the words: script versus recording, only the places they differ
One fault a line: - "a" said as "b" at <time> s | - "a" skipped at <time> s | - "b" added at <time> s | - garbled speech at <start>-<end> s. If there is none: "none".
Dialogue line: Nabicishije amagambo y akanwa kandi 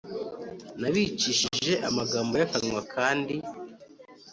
none